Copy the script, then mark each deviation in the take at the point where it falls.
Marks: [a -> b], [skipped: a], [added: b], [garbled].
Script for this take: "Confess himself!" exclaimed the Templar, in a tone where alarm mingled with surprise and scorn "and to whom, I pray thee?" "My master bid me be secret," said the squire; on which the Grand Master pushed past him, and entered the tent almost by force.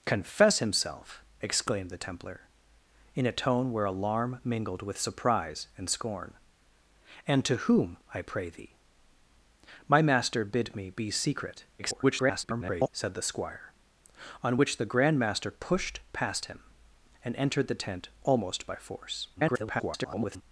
"Confess himself!" exclaimed the Templar, in a tone where alarm mingled with surprise and scorn "and to whom, I pray thee?" "My master bid me be secret," [garbled] said the squire; on which the Grand Master pushed past him, and entered the tent almost by force. [garbled]